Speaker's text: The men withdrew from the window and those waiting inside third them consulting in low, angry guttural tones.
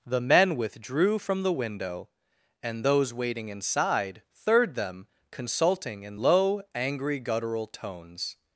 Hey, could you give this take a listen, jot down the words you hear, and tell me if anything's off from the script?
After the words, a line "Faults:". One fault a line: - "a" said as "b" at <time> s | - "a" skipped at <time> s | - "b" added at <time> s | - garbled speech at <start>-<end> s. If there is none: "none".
The men withdrew from the window and those waiting inside third them consulting in low, angry guttural tones.
Faults:
none